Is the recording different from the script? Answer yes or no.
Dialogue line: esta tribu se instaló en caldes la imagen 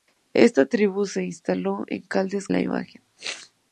no